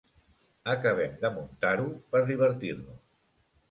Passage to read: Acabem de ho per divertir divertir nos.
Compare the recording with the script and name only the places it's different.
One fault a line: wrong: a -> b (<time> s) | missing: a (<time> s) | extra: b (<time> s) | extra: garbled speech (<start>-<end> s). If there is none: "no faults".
extra: muntar (1.4 s)
missing: divertir (2.7 s)